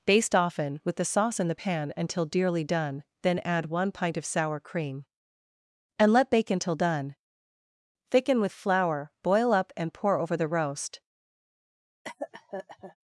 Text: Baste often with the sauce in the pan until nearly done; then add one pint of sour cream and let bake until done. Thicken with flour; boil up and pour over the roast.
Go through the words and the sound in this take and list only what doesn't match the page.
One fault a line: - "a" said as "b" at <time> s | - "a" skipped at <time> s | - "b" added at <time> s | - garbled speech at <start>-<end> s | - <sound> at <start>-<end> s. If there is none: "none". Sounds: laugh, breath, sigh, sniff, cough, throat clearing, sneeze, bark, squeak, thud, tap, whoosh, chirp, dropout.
- "nearly" said as "dearly" at 2.2 s
- cough at 12.0-13.0 s